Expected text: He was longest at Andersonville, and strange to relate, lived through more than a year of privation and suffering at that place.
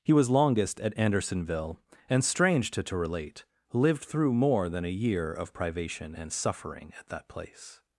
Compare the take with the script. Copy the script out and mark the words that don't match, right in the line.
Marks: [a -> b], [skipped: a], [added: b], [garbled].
He was longest at Andersonville, and strange to [added: to] relate, lived through more than a year of privation and suffering at that place.